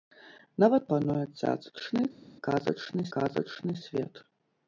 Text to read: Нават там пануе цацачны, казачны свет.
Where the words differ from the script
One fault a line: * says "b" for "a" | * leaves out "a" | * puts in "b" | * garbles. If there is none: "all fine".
* leaves out "там"
* puts in "казачны"